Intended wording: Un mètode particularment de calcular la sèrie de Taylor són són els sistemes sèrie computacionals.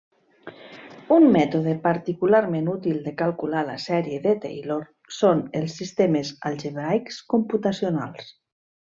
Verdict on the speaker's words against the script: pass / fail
fail